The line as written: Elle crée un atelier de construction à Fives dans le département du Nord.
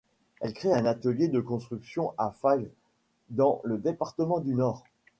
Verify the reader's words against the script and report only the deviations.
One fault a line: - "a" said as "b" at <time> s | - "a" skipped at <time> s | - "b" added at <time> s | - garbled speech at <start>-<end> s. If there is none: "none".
none